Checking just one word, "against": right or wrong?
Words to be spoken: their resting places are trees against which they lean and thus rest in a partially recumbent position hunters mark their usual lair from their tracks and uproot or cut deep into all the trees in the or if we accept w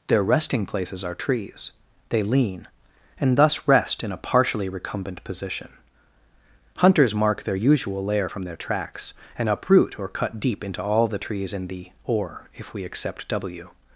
wrong